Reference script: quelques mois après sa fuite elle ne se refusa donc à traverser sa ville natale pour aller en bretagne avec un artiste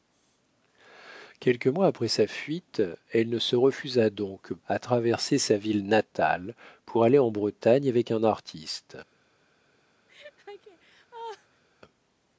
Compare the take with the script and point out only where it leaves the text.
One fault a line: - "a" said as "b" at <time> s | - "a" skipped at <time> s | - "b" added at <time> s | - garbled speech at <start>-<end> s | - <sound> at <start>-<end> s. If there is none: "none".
- laugh at 10.1-11.6 s